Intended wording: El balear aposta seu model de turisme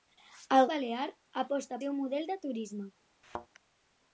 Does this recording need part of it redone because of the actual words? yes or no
no